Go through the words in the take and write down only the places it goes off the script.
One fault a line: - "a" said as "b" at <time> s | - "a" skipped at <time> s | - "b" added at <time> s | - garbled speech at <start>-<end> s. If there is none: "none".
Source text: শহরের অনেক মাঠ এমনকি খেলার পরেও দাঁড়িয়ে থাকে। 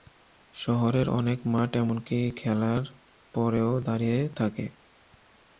none